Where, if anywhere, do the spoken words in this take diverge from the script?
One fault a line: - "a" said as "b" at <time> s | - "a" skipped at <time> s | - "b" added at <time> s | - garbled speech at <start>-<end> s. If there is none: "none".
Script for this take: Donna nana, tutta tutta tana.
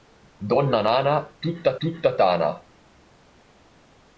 none